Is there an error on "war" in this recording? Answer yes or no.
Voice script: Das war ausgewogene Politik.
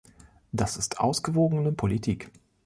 yes